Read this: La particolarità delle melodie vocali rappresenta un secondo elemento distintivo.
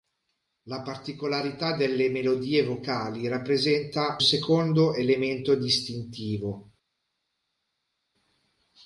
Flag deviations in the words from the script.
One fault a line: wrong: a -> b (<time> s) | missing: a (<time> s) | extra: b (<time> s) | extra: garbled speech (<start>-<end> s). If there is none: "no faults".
missing: un (4.2 s)